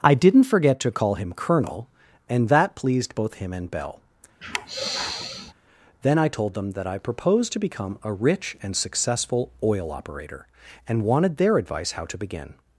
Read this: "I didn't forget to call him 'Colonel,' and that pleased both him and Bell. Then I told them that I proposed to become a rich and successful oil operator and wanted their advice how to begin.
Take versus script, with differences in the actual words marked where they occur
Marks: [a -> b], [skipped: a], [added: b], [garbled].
"I didn't forget to call him 'Colonel,' and that pleased both him and Bell. Then I told them that I proposed to become a rich and successful oil operator and wanted their advice how to begin.